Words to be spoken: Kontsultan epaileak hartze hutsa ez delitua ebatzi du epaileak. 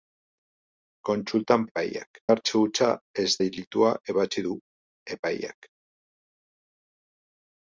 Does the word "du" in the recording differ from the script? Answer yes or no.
no